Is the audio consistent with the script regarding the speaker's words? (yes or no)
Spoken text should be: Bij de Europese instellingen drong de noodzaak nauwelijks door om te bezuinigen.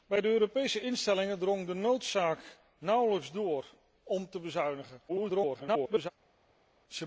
no